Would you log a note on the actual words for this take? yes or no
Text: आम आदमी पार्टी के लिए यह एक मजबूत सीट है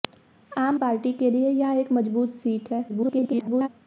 yes